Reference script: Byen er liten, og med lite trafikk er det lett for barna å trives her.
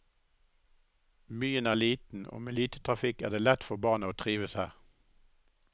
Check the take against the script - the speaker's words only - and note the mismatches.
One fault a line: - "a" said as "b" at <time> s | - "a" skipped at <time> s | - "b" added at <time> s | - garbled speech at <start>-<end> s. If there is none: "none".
none